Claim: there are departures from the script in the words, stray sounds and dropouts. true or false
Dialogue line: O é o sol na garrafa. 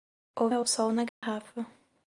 true